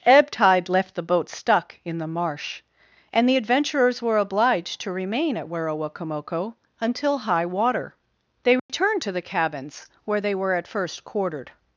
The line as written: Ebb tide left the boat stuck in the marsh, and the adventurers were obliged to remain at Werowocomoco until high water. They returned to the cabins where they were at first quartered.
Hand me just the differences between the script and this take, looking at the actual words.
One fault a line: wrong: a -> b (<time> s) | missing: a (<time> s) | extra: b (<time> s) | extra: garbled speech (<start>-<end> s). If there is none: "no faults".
no faults